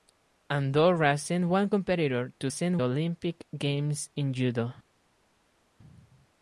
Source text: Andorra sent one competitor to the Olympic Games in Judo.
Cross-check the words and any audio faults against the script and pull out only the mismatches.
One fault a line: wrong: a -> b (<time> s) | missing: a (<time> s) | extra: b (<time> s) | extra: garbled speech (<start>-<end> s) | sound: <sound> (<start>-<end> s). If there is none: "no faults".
wrong: the -> sent (2.5 s)